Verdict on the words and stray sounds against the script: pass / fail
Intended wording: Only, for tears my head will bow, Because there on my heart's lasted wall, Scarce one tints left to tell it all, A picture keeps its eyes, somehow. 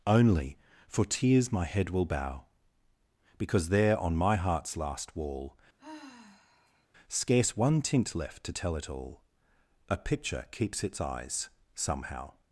fail